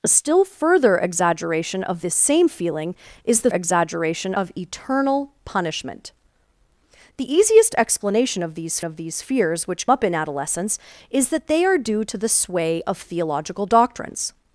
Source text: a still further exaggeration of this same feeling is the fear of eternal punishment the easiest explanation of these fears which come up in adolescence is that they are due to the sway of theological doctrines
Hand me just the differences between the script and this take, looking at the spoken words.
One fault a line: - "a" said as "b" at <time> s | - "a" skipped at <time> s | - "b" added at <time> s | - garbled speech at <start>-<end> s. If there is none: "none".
- "fear" said as "exaggeration" at 3.5 s
- "of these" added at 8.8 s
- "come" skipped at 9.9 s